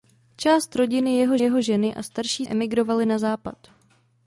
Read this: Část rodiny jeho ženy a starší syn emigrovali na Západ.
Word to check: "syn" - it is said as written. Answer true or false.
false